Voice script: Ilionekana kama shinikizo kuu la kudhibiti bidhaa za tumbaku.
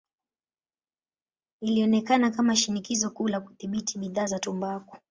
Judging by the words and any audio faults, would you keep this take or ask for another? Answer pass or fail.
pass